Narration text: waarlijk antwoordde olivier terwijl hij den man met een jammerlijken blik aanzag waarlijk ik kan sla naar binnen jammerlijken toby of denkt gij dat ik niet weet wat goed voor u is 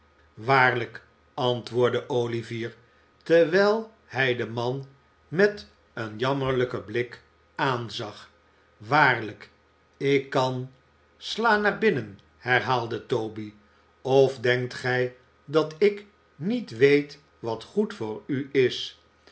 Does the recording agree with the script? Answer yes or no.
no